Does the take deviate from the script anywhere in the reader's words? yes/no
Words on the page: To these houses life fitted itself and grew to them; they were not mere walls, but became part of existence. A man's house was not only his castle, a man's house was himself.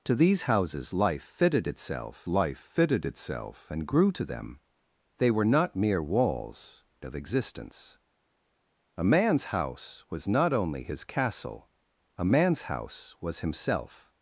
yes